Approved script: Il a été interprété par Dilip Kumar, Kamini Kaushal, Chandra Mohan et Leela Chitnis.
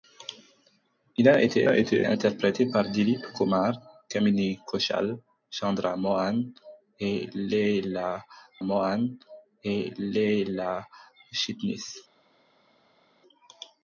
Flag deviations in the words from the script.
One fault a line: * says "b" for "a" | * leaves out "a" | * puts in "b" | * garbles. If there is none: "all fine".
* puts in "a été"
* puts in "Mohan et Leela"